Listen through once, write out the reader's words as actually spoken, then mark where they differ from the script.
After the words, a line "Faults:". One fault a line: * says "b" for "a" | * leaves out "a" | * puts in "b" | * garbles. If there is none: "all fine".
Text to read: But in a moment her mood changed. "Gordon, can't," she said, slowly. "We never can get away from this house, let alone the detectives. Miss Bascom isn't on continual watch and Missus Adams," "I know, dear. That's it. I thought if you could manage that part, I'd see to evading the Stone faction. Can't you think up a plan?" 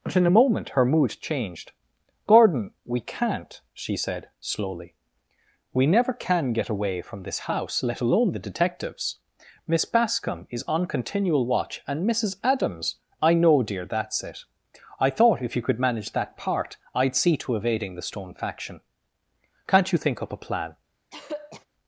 But in a moment her mood changed. "Gordon, we can't," she said, slowly. "We never can get away from this house, let alone the detectives. Miss Bascom is on continual watch and Missus Adams," "I know, dear. That's it. I thought if you could manage that part, I'd see to evading the Stone faction. Can't you think up a plan?"
Faults:
* puts in "we"
* says "is" for "isn't"